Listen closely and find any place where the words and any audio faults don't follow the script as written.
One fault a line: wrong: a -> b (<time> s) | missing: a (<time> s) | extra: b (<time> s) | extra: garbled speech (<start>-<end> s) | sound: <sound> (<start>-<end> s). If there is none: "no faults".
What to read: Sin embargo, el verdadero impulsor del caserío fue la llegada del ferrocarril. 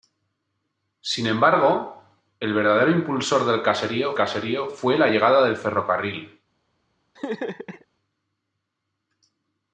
extra: caserío (4.1 s)
sound: laugh (7.2-7.9 s)